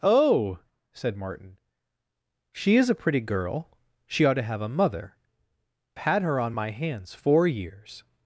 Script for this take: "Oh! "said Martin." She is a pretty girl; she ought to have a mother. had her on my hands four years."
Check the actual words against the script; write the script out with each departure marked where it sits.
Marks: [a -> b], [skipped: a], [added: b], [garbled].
"Oh! "said Martin." She is a pretty girl; she ought to have a mother. had her on my hands four years."